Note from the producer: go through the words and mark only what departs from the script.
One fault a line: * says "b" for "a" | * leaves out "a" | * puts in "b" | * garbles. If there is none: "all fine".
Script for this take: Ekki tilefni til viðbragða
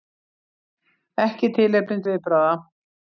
* leaves out "til"